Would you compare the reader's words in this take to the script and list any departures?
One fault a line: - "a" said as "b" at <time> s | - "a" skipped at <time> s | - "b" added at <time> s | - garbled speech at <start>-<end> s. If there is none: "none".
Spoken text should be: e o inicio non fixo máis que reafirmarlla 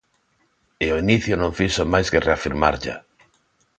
none